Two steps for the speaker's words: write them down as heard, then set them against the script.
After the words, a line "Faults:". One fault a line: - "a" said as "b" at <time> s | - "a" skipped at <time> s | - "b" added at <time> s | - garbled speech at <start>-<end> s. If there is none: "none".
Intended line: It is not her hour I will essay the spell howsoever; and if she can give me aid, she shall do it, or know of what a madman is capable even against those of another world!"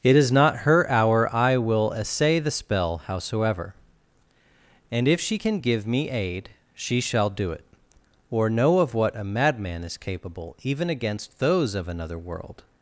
It is not her hour I will essay the spell howsoever; and if she can give me aid, she shall do it, or know of what a madman is capable even against those of another world!"
Faults:
none